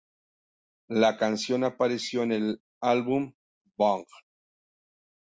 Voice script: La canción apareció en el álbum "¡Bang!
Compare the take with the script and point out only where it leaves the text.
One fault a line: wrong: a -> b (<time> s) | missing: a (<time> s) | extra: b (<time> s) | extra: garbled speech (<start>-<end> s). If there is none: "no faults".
no faults